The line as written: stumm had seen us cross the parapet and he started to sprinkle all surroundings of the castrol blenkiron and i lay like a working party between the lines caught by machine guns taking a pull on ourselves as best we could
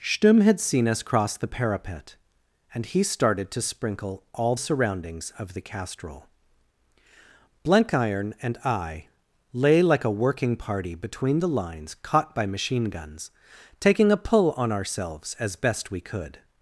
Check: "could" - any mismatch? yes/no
no